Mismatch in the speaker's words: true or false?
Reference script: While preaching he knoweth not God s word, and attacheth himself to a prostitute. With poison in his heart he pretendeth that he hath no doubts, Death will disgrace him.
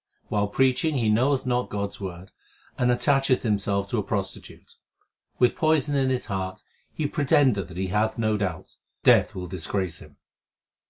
false